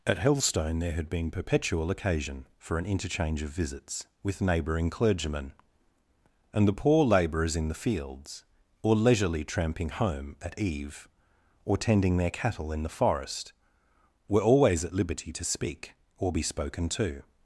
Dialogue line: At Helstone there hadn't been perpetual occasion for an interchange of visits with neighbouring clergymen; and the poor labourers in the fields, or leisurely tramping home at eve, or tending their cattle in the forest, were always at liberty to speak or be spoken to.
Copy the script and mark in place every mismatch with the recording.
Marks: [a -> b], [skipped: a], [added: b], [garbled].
At Helstone there [hadn't -> had] been perpetual occasion for an interchange of visits with neighbouring clergymen; and the poor labourers in the fields, or leisurely tramping home at eve, or tending their cattle in the forest, were always at liberty to speak or be spoken to.